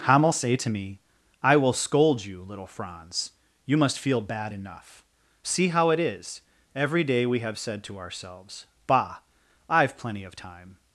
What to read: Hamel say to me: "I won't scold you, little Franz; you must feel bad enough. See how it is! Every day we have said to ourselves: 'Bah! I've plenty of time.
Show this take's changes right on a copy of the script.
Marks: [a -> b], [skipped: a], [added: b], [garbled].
Hamel say to me: "I [won't -> will] scold you, little Franz; you must feel bad enough. See how it is! Every day we have said to ourselves: 'Bah! I've plenty of time.